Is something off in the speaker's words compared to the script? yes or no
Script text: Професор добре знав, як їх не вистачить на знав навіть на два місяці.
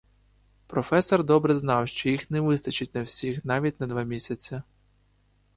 yes